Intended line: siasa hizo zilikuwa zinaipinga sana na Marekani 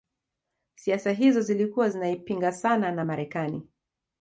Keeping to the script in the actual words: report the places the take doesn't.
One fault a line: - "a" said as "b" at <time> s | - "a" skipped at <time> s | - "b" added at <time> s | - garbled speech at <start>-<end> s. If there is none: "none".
none